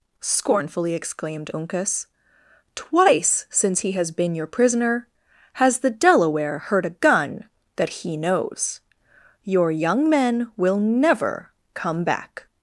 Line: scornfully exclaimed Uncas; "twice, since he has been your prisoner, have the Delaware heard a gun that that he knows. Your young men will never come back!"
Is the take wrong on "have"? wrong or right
wrong